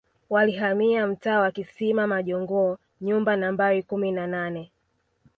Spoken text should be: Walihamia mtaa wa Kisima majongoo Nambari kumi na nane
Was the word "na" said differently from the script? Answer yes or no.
no